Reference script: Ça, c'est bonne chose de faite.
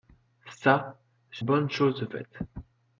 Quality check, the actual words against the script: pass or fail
pass